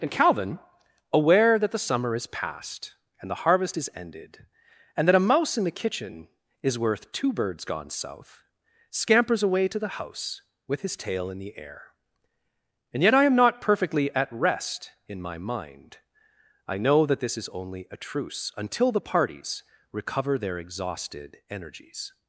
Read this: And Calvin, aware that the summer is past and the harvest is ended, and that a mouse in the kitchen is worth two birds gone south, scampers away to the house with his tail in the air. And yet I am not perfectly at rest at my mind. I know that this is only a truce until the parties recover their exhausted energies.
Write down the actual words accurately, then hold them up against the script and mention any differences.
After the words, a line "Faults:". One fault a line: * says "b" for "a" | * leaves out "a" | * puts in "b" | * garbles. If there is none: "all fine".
And Calvin, aware that the summer is past and the harvest is ended, and that a mouse in the kitchen is worth two birds gone south, scampers away to the house with his tail in the air. And yet I am not perfectly at rest in my mind. I know that this is only a truce until the parties recover their exhausted energies.
Faults:
* says "in" for "at"